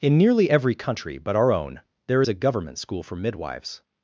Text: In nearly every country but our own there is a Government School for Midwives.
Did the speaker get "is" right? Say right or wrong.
wrong